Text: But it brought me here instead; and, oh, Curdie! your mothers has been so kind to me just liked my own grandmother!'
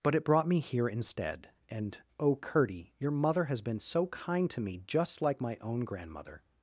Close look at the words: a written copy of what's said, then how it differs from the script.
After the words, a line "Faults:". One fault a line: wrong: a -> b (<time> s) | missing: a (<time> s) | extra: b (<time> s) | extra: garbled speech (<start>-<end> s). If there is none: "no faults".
But it brought me here instead; and, oh, Curdie! your mother has been so kind to me just like my own grandmother!'
Faults:
wrong: mothers -> mother (3.1 s)
wrong: liked -> like (5.2 s)